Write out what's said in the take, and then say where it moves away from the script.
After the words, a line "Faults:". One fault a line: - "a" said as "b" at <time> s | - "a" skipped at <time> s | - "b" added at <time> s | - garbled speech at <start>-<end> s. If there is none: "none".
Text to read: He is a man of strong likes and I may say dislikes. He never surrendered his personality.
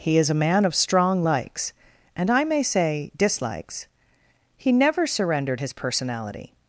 He is a man of strong likes and I may say dislikes. He never surrendered his personality.
Faults:
none